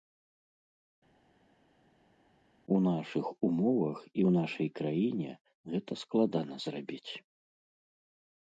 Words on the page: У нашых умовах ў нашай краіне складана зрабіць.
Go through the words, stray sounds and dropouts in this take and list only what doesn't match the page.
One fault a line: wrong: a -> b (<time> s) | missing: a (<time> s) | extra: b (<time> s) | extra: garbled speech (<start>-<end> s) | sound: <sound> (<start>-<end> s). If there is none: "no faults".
extra: і (4.0 s)
extra: гэта (5.8 s)